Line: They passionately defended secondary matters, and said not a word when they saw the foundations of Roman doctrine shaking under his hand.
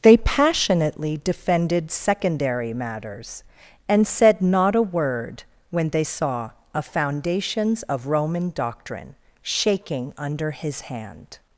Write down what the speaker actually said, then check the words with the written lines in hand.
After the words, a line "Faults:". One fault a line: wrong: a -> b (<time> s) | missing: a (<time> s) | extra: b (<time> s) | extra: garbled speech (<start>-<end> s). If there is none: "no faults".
They passionately defended secondary matters, and said not a word when they saw a foundations of Roman doctrine shaking under his hand.
Faults:
wrong: the -> a (6.7 s)